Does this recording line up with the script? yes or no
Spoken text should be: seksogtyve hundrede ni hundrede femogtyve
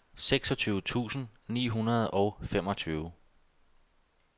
no